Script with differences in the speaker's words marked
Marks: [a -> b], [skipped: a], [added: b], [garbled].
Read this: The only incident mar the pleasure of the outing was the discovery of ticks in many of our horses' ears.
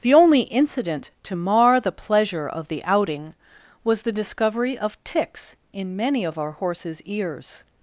The only incident [added: to] mar the pleasure of the outing was the discovery of ticks in many of our horses' ears.